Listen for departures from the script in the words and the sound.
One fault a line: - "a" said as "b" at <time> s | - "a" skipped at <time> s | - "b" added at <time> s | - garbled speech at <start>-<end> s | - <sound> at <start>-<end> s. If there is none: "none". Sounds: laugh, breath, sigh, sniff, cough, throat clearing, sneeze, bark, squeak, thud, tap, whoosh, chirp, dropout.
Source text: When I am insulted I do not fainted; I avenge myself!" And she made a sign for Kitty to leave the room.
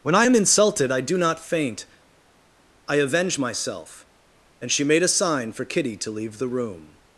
- "fainted" said as "faint" at 1.5 s